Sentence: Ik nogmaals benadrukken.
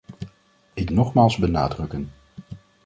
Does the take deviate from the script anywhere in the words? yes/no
no